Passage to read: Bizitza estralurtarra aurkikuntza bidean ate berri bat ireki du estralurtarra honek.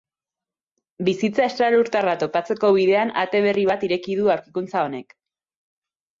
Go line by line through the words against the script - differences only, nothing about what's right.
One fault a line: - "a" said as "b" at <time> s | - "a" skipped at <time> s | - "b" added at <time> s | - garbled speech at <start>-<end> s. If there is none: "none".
- "aurkikuntza" said as "topatzeko" at 2.2 s
- "estralurtarra" said as "aurkikuntza" at 4.4 s